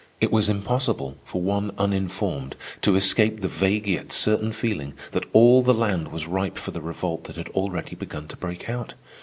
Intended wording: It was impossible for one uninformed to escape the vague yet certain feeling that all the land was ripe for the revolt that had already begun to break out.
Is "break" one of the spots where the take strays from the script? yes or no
no